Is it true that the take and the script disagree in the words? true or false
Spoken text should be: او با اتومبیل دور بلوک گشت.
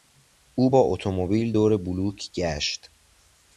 false